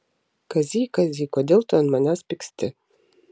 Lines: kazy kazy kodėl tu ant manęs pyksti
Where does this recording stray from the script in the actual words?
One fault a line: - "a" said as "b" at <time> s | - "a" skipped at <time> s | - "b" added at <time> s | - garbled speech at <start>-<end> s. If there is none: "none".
none